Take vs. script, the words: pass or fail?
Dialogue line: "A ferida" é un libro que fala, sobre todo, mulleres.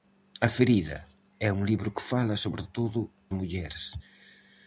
pass